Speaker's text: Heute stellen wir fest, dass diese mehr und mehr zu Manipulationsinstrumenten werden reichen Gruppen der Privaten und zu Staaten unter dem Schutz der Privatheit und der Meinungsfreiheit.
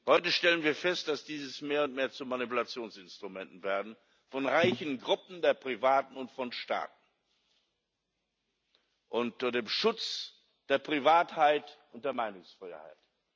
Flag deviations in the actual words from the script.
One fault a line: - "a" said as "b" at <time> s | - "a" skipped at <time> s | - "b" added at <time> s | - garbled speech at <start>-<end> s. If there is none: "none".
- "von" added at 4.3 s
- "zu" said as "von" at 6.3 s